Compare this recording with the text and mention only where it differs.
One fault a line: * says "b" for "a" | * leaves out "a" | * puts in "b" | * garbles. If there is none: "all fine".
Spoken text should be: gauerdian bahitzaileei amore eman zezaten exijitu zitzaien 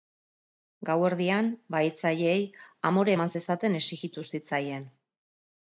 all fine